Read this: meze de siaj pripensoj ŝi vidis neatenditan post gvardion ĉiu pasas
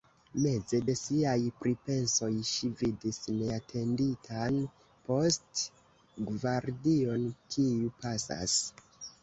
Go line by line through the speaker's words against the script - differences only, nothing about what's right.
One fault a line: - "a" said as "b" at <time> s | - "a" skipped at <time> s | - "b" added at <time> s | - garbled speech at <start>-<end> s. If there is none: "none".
- "ĉiu" said as "kiu" at 7.6 s